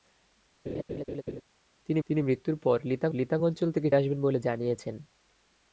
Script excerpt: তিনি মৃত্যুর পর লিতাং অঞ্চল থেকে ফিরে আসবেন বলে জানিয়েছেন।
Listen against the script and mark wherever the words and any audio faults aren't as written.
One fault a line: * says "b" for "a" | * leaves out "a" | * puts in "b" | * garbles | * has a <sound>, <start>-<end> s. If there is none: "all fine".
* has a laugh, 0.7-1.4 s
* puts in "তিনি"
* puts in "লিতাং"
* leaves out "ফিরে"